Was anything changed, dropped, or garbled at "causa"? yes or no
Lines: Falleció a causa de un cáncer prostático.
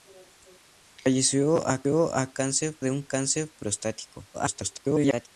yes